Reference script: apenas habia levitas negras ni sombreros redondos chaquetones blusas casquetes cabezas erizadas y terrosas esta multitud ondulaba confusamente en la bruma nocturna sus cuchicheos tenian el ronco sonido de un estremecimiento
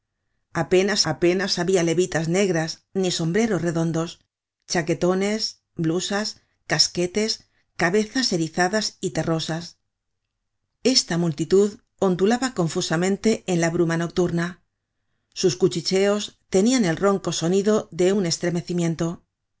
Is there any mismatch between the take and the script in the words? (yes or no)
yes